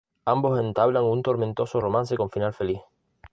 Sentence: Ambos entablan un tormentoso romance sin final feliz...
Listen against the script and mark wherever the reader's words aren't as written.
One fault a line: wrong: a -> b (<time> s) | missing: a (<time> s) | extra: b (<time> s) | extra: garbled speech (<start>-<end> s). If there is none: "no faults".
wrong: sin -> con (2.2 s)